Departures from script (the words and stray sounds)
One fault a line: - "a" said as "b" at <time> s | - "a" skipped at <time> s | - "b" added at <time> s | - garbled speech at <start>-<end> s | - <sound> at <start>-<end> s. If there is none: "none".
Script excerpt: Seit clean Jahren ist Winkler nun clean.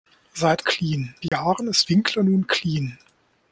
- dropout at 1.3-1.3 s